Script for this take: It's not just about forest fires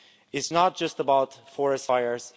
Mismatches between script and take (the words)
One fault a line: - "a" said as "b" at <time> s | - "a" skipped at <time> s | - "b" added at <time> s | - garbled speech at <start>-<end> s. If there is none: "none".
none